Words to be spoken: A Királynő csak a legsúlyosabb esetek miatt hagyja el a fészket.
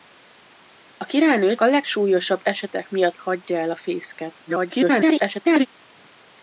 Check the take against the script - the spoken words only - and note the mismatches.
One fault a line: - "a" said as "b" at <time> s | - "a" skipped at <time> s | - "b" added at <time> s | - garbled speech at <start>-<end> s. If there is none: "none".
- "csak" skipped at 1.6 s
- garbled speech at 4.5-5.7 s